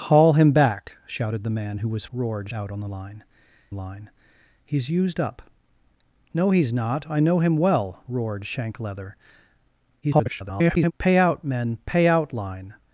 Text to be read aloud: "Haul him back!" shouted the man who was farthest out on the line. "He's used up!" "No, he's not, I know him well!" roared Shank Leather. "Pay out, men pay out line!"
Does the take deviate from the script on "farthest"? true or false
true